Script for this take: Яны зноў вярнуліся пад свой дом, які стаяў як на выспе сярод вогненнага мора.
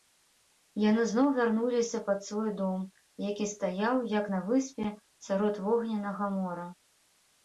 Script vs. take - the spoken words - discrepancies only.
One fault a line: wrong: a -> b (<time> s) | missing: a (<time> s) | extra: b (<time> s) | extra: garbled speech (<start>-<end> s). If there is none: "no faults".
no faults